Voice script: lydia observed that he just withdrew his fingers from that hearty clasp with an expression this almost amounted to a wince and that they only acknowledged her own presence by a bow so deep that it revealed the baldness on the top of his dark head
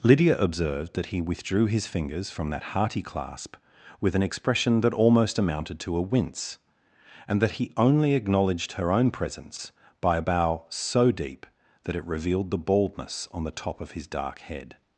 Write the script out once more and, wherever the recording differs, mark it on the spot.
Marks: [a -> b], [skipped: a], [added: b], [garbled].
lydia observed that he [skipped: just] withdrew his fingers from that hearty clasp with an expression [this -> that] almost amounted to a wince and that [they -> he] only acknowledged her own presence by a bow so deep that it revealed the baldness on the top of his dark head